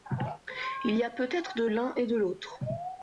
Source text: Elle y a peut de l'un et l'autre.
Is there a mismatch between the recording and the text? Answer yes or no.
yes